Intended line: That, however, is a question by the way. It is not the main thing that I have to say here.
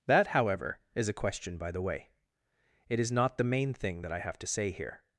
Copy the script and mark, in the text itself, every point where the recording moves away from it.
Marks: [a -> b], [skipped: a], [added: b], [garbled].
That, however, is a question by the way. It is not the main thing that I have to say here.